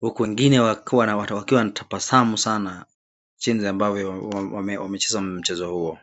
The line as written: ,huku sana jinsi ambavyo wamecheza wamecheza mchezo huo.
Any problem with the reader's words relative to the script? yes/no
yes